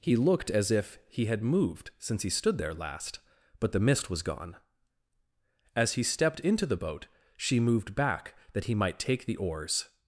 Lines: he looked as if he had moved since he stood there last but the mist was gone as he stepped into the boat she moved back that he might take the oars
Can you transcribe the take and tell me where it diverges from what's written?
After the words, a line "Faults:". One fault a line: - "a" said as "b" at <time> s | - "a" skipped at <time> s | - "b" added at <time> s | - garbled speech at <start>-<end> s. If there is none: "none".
he looked as if he had moved since he stood there last but the mist was gone as he stepped into the boat she moved back that he might take the oars
Faults:
none